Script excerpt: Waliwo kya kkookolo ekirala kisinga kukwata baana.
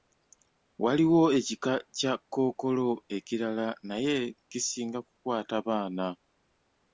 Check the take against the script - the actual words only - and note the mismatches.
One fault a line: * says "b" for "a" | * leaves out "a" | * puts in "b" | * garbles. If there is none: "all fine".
* puts in "ekika"
* puts in "naye"